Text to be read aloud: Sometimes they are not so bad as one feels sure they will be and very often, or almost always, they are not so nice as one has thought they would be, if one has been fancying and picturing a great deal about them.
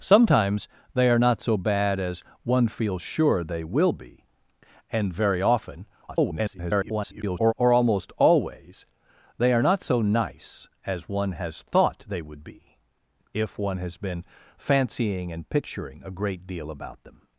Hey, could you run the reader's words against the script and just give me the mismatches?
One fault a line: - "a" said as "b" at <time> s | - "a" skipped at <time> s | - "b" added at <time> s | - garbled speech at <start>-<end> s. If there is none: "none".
- garbled speech at 6.1-7.5 s